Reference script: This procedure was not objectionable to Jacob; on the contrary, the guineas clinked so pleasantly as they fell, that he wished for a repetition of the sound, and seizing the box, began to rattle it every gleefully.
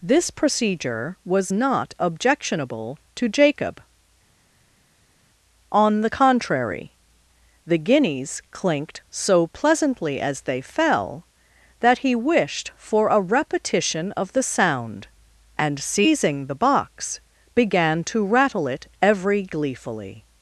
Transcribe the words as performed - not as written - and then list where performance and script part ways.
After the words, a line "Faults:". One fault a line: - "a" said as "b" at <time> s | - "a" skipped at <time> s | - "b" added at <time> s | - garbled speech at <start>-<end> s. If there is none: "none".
This procedure was not objectionable to Jacob; on the contrary, the guineas clinked so pleasantly as they fell, that he wished for a repetition of the sound, and seizing the box, began to rattle it every gleefully.
Faults:
none